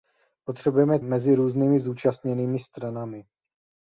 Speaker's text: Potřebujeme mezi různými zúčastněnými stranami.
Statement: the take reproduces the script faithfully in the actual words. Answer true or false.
true